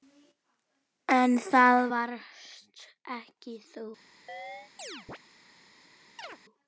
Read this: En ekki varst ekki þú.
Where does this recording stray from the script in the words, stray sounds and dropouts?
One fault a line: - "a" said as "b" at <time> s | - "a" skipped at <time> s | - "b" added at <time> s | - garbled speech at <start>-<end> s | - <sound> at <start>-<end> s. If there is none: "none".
- "ekki" said as "það" at 1.5 s
- chirp at 4.3-5.2 s
- chirp at 6.2-6.4 s